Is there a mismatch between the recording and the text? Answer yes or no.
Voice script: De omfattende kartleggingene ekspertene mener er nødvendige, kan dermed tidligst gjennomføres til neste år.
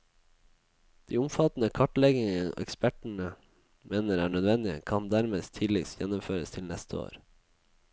no